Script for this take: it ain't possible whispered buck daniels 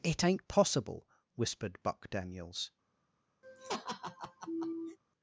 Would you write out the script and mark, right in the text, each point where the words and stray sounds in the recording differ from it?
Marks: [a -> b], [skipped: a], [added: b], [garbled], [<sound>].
it ain't possible whispered buck daniels [laugh]